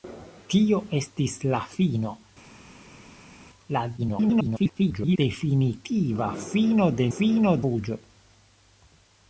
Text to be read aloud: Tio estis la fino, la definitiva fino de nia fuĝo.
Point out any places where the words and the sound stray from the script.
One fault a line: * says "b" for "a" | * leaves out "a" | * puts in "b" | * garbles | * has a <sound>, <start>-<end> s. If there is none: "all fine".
* garbles
* says "fino" for "nia"